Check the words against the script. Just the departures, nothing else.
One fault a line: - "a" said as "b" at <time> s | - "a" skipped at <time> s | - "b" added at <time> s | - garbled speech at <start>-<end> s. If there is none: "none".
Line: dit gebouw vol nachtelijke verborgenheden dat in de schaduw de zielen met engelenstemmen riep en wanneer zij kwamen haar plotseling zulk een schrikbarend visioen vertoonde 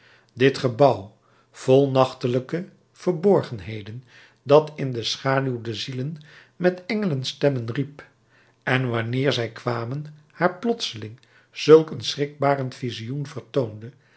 none